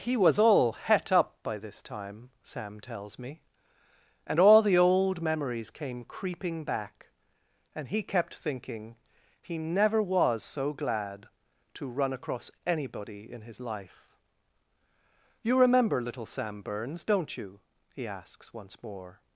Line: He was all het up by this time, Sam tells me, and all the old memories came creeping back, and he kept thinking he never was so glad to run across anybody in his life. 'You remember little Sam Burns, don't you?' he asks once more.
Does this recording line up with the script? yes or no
yes